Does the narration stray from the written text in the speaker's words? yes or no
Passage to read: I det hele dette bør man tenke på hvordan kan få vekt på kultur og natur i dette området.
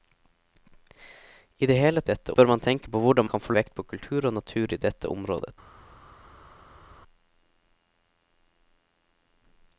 no